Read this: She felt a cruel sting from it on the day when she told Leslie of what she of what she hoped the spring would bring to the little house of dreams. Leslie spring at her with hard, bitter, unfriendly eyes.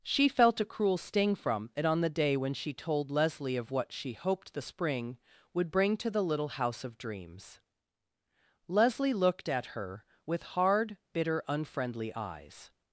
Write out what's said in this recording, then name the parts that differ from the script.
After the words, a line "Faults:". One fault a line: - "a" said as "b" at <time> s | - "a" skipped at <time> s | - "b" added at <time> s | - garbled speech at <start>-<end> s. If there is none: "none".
She felt a cruel sting from it on the day when she told Leslie of what she hoped the spring would bring to the little house of dreams. Leslie looked at her with hard, bitter, unfriendly eyes.
Faults:
- "of what she" skipped at 4.1 s
- "spring" said as "looked" at 9.1 s